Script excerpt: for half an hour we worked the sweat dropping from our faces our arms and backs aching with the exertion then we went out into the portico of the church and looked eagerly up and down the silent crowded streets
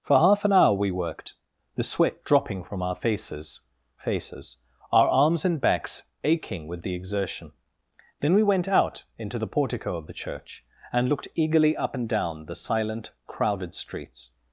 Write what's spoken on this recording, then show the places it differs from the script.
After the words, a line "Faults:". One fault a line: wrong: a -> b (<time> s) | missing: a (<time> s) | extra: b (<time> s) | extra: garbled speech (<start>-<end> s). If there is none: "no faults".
for half an hour we worked the sweat dropping from our faces faces our arms and backs aching with the exertion then we went out into the portico of the church and looked eagerly up and down the silent crowded streets
Faults:
extra: faces (4.0 s)